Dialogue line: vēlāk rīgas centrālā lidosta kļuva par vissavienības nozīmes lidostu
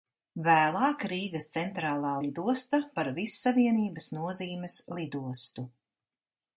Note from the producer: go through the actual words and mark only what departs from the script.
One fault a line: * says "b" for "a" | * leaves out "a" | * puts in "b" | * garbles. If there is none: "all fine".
* leaves out "kļuva"